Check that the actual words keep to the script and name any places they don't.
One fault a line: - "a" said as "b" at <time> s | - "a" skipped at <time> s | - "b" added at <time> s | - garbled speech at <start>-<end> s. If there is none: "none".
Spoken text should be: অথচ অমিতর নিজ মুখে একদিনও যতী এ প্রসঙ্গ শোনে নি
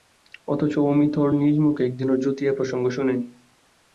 none